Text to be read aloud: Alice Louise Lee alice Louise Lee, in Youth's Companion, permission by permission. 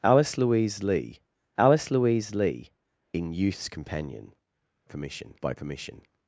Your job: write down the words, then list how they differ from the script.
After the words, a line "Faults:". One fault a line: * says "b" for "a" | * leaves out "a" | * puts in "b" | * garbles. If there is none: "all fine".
Alice Louise Lee alice Louise Lee, in Youth's Companion, permission by permission.
Faults:
all fine